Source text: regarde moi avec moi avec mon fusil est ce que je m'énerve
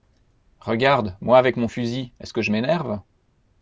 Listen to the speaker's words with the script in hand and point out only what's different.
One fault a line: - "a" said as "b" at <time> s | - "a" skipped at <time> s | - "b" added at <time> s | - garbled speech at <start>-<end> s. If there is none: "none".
- "moi avec" skipped at 1.6 s